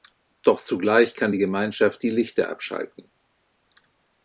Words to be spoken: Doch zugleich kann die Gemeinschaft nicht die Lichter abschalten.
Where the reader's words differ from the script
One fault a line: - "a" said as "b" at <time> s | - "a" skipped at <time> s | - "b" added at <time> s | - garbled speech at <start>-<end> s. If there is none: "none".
- "nicht" skipped at 2.0 s